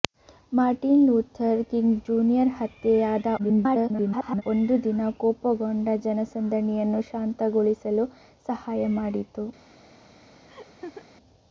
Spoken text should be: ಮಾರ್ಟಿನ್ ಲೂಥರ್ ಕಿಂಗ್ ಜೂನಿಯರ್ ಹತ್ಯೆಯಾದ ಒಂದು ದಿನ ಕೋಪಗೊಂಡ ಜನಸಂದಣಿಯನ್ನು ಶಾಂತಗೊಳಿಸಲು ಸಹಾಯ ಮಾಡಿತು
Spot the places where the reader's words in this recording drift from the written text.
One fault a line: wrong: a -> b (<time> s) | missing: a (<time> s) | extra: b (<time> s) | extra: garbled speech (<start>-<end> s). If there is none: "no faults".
extra: garbled speech (3.4-4.4 s)